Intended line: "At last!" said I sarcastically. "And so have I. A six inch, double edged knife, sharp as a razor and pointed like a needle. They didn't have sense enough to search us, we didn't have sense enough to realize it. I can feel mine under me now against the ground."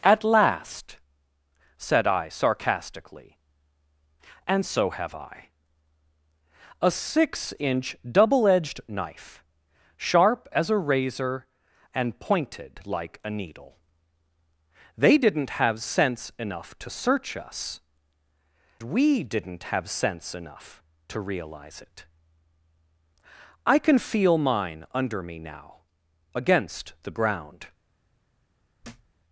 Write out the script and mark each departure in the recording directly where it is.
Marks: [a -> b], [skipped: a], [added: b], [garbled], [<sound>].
"At last!" said I sarcastically. "And so have I. A six inch, double edged knife, sharp as a razor and pointed like a needle. They didn't have sense enough to search us, we didn't have sense enough to realize it. I can feel mine under me now against the ground." [thud]